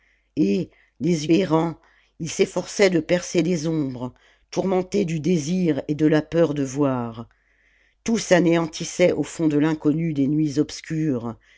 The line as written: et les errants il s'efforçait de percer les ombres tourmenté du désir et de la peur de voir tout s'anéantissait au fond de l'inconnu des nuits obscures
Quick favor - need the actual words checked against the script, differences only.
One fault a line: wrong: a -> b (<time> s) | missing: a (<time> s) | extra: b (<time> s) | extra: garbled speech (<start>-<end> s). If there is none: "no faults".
no faults